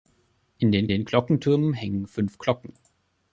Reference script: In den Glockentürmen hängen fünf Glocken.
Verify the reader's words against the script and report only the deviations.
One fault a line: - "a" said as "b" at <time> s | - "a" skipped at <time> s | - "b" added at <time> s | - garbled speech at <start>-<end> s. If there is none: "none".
- "den" added at 0.9 s